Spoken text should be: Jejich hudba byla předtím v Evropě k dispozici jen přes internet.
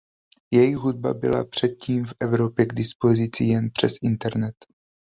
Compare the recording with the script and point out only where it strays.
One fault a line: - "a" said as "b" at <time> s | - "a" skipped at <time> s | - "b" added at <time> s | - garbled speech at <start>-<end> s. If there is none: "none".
none